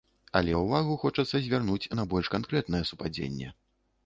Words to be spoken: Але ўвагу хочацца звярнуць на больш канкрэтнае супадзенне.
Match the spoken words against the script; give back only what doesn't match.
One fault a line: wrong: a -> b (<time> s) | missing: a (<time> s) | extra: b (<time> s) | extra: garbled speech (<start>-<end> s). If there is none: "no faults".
no faults